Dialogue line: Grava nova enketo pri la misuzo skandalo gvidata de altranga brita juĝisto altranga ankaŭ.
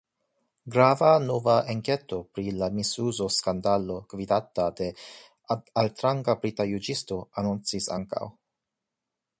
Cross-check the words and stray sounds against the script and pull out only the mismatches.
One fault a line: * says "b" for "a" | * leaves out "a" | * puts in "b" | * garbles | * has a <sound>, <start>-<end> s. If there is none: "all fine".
* says "anoncis" for "altranga"